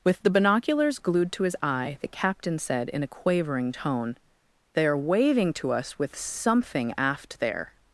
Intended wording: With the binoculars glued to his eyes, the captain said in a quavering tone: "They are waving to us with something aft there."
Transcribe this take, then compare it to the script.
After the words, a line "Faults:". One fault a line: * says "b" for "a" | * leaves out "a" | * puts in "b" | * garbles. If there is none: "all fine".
With the binoculars glued to his eye, the captain said in a quavering tone: "They are waving to us with something aft there."
Faults:
* says "eye" for "eyes"